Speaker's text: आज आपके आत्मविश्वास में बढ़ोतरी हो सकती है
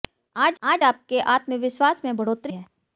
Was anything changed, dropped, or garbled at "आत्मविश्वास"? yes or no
no